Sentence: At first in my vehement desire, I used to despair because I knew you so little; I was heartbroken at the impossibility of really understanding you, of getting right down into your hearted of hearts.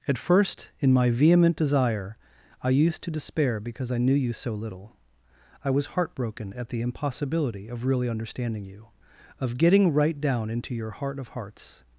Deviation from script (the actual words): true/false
true